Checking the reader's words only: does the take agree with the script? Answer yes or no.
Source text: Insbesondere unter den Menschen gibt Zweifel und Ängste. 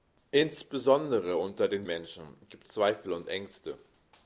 yes